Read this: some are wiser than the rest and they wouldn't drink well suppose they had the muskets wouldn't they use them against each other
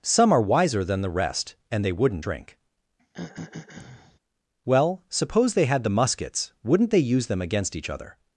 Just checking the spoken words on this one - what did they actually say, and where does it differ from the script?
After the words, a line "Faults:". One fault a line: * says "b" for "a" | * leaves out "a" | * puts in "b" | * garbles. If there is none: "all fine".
some are wiser than the rest and they wouldn't drink well suppose they had the muskets wouldn't they use them against each other
Faults:
all fine